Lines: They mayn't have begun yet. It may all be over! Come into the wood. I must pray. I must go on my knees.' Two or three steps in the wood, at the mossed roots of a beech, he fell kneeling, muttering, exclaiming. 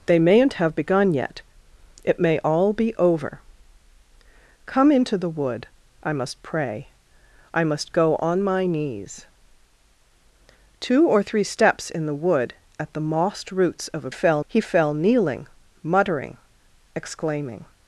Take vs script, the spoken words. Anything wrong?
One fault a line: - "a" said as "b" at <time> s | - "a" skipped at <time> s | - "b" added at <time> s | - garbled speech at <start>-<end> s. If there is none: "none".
- "beech" said as "fell" at 14.1 s